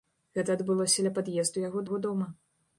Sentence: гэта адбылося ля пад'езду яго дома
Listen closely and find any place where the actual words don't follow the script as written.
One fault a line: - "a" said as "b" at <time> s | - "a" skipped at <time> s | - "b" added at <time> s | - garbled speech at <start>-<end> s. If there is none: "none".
- "яго" added at 1.9 s